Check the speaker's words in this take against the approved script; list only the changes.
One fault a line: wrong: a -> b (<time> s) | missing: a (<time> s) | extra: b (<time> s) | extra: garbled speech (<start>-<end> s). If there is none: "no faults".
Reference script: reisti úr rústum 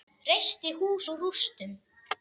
extra: hús (0.8 s)